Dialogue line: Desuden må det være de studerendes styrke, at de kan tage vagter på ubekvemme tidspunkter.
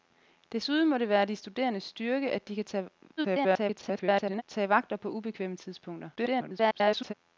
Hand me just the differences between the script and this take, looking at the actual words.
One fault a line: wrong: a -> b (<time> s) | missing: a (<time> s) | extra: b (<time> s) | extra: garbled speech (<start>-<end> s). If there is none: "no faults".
extra: garbled speech (3.2-4.4 s)
extra: garbled speech (6.2-7.1 s)